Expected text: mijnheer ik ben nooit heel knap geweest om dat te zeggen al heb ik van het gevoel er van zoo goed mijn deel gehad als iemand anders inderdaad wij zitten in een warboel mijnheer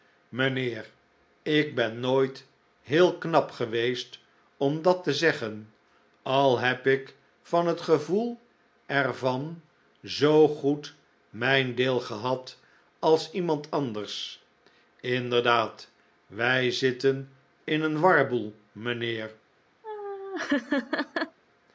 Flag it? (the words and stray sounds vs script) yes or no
yes